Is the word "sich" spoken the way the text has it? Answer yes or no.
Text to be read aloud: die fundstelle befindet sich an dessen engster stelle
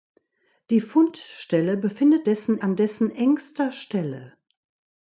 no